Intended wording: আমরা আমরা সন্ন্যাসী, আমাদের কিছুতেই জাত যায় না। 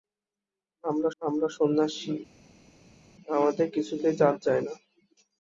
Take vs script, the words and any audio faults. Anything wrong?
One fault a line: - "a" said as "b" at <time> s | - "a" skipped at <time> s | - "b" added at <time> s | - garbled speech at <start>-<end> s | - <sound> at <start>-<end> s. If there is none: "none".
none